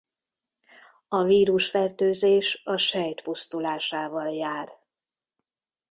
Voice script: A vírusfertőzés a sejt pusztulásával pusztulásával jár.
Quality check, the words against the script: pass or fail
fail